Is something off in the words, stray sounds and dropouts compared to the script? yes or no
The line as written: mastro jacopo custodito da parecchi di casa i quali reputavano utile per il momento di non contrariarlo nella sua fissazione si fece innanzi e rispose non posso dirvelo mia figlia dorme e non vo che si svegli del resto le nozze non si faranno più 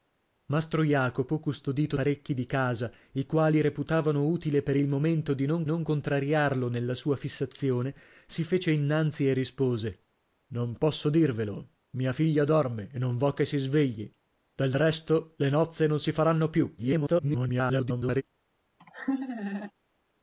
yes